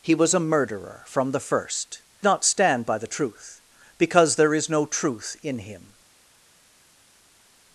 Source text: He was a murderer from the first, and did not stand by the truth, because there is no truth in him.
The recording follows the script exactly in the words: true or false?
false